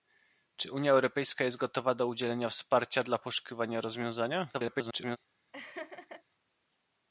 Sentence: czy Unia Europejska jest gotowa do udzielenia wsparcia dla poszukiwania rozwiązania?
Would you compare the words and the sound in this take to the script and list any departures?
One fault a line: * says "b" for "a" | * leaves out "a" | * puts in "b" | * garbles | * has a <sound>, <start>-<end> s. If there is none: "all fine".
* garbles
* has a laugh, 5.5-6.2 s